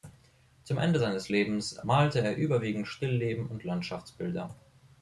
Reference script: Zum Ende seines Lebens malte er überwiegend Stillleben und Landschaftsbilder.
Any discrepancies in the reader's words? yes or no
no